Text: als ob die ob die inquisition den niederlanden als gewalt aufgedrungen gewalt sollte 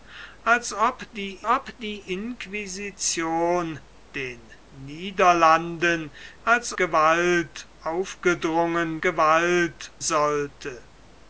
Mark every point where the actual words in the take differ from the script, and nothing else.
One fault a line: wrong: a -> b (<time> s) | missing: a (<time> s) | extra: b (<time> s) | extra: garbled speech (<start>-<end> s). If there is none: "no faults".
no faults